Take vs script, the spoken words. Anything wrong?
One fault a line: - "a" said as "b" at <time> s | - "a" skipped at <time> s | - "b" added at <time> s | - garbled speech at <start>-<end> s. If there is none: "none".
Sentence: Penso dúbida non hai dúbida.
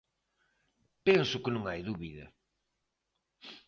- "dúbida" said as "que" at 1.4 s